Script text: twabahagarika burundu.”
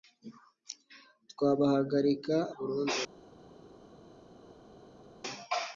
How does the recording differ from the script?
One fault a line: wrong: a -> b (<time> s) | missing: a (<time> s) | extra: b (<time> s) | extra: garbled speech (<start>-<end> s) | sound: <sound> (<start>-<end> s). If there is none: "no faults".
no faults